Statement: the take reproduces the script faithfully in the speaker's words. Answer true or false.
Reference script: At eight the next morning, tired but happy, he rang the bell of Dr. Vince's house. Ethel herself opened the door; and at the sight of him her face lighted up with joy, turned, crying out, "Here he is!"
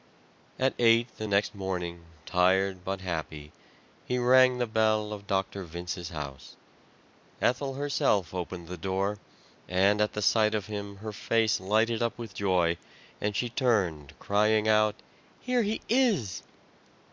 false